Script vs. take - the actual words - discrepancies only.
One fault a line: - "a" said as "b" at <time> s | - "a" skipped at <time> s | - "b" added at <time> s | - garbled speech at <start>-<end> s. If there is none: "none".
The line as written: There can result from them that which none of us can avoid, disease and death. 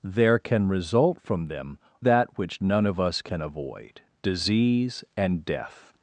none